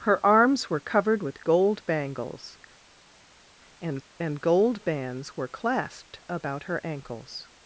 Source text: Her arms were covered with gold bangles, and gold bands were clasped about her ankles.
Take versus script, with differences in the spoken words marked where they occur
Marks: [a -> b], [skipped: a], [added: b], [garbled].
Her arms were covered with gold bangles, and [added: and] gold bands were clasped about her ankles.